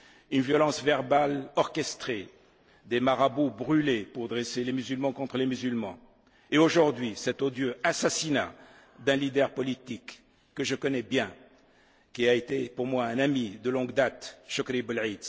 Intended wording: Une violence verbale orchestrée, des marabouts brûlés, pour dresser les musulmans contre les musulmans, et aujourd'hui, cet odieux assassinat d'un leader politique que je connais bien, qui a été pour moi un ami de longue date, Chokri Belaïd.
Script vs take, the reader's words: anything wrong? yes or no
no